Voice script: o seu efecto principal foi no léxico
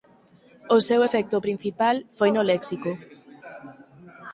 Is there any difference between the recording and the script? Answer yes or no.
no